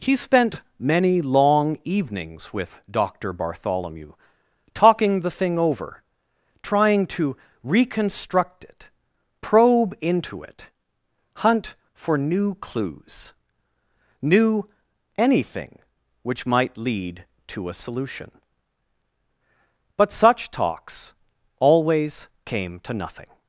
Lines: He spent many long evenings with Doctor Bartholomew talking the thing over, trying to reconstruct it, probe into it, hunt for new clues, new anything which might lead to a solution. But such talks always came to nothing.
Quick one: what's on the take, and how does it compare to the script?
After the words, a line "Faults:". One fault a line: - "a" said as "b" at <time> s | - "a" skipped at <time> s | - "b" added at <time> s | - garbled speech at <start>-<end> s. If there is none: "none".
He spent many long evenings with Doctor Bartholomew talking the thing over, trying to reconstruct it, probe into it, hunt for new clues, new anything which might lead to a solution. But such talks always came to nothing.
Faults:
none